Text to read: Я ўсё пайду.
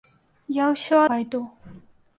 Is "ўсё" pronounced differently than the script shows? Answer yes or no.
no